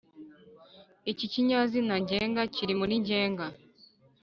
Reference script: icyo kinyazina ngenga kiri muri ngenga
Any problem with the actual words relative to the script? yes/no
yes